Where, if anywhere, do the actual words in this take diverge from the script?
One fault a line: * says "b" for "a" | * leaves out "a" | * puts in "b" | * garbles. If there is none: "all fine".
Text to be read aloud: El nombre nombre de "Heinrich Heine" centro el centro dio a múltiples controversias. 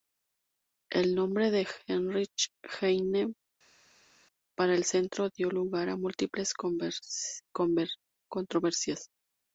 * leaves out "nombre"
* says "para" for "centro"
* puts in "lugar"